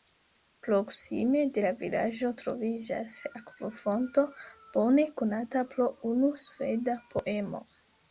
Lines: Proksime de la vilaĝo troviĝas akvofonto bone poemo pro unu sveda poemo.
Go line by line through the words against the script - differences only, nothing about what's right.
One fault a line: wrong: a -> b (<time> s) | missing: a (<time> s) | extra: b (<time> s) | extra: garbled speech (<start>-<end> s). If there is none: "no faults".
wrong: poemo -> konata (5.2 s)